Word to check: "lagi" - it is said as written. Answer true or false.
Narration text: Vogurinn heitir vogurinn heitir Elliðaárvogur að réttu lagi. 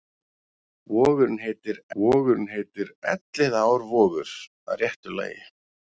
true